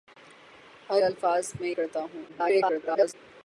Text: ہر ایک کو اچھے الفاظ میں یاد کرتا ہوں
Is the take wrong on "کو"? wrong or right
wrong